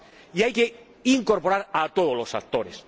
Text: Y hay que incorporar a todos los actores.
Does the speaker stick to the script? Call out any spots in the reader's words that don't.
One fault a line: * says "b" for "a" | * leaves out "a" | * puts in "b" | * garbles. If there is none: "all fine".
all fine